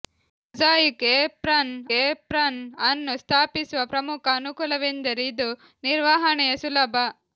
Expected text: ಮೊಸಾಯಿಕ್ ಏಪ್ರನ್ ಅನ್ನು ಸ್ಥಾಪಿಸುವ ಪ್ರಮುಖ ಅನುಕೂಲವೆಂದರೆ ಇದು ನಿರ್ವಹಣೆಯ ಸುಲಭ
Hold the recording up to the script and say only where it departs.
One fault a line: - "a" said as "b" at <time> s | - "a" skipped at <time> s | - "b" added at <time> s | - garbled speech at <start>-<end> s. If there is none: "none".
- "ಏಪ್ರನ್" added at 2.0 s